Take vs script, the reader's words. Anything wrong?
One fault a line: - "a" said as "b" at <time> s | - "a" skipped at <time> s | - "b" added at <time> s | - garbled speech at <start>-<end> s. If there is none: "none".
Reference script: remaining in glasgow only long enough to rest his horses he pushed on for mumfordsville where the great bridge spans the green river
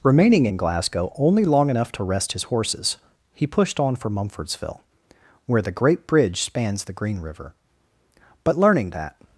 - "but learning that" added at 8.4 s